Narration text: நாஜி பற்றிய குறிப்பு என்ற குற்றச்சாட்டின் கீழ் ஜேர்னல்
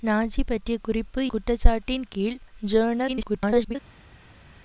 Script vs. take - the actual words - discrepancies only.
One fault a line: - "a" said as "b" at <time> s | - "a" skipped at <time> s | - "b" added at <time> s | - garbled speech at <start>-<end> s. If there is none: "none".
- "என்ற" skipped at 1.3 s
- garbled speech at 3.1-3.8 s